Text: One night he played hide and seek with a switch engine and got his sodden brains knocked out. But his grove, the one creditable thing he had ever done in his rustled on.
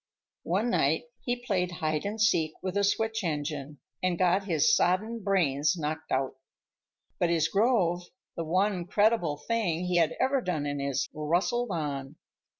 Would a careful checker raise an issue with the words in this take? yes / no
no